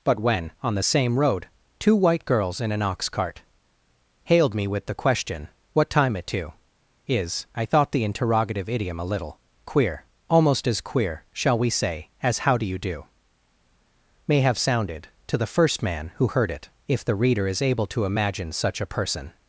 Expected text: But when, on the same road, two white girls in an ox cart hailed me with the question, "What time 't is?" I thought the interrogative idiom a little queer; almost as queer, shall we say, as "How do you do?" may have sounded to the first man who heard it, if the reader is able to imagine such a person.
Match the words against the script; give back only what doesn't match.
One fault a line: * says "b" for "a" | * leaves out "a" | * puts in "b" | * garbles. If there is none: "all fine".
* says "it to" for "t"